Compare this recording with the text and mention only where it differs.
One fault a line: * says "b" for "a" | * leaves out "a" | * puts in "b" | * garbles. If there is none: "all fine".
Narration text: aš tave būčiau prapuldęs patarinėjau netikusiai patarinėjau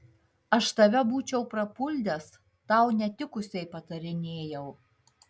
* says "tau" for "patarinėjau"